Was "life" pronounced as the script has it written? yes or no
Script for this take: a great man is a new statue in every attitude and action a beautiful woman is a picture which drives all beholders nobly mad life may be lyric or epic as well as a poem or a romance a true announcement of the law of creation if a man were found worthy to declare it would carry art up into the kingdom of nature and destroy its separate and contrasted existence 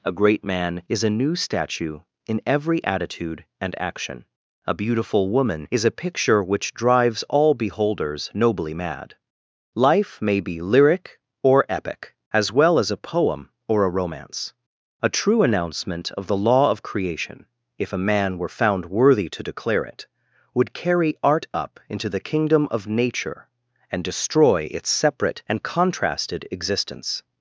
yes